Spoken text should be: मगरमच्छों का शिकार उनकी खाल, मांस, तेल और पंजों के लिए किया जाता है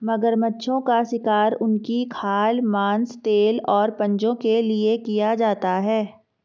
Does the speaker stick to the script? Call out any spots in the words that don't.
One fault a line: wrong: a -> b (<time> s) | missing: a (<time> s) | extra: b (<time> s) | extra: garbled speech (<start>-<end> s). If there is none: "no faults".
no faults